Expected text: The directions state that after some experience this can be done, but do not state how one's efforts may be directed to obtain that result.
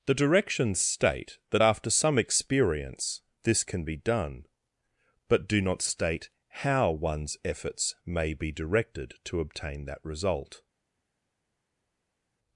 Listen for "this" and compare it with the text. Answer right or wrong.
right